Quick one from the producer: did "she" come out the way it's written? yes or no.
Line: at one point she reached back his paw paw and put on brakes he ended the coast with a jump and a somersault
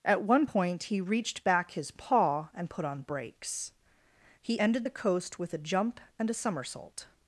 no